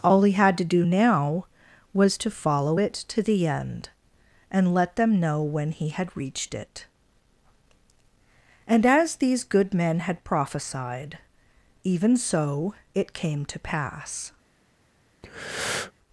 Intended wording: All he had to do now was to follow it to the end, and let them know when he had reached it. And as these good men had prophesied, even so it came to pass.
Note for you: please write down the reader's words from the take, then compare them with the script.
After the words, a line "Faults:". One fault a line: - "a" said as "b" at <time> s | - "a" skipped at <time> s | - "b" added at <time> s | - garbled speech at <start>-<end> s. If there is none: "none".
All he had to do now was to follow it to the end, and let them know when he had reached it. And as these good men had prophesied, even so it came to pass.
Faults:
none